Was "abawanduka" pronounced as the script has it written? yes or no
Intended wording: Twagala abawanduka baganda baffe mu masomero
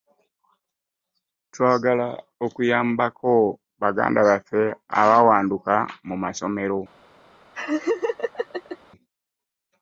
no